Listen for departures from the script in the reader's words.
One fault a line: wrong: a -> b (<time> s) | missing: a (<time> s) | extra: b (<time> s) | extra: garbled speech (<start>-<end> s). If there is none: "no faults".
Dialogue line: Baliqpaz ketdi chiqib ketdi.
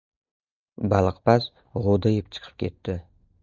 wrong: ketdi -> g‘o‘dayib (1.9 s)